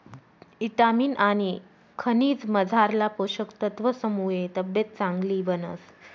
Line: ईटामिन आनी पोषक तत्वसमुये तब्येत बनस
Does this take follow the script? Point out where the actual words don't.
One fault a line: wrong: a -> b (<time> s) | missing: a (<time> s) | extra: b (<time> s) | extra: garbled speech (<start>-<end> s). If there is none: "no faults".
extra: खनिजमझारला (2.0 s)
extra: चांगली (5.0 s)